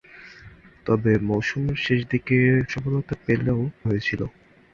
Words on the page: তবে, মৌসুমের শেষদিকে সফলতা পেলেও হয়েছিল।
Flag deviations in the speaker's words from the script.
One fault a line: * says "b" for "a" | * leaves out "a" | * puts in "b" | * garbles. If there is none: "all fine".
all fine